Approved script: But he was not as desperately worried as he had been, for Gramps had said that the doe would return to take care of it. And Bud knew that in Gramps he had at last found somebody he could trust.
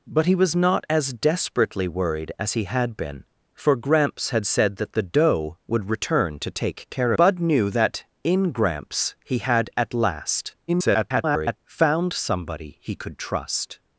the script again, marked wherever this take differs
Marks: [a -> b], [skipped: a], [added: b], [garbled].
But he was not as desperately worried as he had been, for Gramps had said that the doe would return to take care [skipped: of it. And] Bud knew that in Gramps he had at last [garbled] found somebody he could trust.